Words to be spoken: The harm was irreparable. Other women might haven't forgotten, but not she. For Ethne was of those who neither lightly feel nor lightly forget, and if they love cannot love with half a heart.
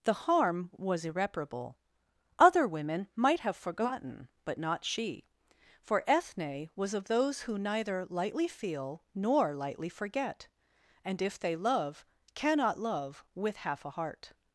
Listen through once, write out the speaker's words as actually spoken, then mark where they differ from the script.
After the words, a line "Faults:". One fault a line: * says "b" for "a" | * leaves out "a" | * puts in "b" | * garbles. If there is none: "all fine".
The harm was irreparable. Other women might have forgotten, but not she. For Ethne was of those who neither lightly feel nor lightly forget, and if they love cannot love with half a heart.
Faults:
* says "have" for "haven't"